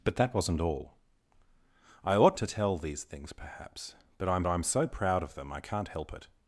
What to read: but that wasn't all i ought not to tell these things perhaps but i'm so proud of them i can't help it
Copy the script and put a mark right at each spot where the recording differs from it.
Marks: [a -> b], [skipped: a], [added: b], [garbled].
but that wasn't all i ought [skipped: not] to tell these things perhaps but i'm [added: i'm] so proud of them i can't help it